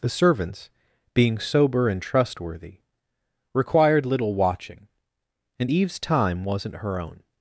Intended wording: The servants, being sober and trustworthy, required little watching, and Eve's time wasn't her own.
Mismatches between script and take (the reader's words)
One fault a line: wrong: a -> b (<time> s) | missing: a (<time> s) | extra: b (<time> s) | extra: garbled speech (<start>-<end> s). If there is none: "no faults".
no faults